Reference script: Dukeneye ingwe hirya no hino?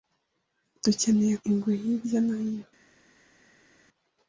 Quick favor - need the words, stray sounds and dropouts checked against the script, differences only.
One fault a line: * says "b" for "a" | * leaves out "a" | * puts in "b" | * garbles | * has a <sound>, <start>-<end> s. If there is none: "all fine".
all fine